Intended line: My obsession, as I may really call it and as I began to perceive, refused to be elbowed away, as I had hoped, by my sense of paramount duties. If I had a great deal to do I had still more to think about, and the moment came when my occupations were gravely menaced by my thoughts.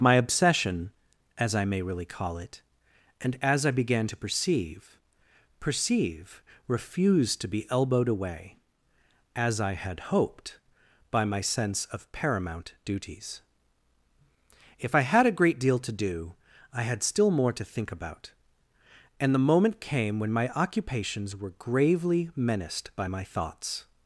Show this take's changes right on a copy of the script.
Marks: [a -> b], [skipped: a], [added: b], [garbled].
My obsession, as I may really call it and as I began to perceive, [added: perceive] refused to be elbowed away, as I had hoped, by my sense of paramount duties. If I had a great deal to do I had still more to think about, and the moment came when my occupations were gravely menaced by my thoughts.